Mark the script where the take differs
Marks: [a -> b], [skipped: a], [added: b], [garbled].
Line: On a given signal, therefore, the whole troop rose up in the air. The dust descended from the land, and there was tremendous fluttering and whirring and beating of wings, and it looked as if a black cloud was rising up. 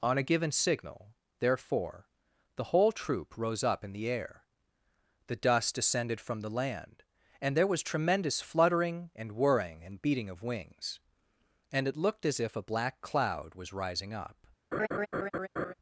On a given signal, therefore, the whole troop rose up in the air. The dust descended from the land, and there was tremendous fluttering and whirring and beating of wings, and it looked as if a black cloud was rising up.